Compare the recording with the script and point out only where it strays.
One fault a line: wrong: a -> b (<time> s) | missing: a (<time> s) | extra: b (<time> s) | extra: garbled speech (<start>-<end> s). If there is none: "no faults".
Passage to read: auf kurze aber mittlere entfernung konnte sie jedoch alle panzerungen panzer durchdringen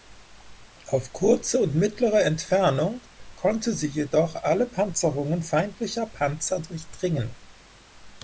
wrong: aber -> und (1.6 s)
extra: feindlicher (5.4 s)